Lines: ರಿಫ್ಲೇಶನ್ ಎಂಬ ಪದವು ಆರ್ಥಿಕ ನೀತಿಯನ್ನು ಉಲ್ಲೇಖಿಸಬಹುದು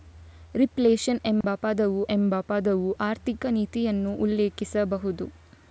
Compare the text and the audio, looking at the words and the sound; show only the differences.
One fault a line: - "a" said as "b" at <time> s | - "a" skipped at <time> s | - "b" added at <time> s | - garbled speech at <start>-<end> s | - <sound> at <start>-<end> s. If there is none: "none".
- dropout at 1.4-1.4 s
- "ಎಂಬ ಪದವು" added at 2.1 s